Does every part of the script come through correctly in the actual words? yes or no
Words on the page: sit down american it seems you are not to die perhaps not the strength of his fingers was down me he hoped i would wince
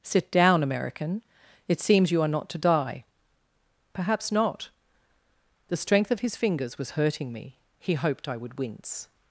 no